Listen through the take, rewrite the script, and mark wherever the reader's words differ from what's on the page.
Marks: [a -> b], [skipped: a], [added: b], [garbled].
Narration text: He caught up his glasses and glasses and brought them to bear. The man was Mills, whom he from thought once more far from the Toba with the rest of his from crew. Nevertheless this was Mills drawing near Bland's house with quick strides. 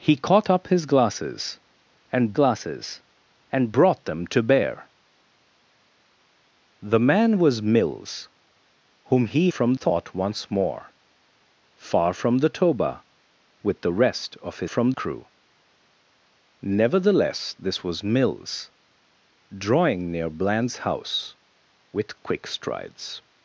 He caught up his glasses and glasses and brought them to bear. The man was Mills, whom he from thought once more far from the Toba with the rest of his from crew. Nevertheless this was Mills drawing near Bland's house with quick strides.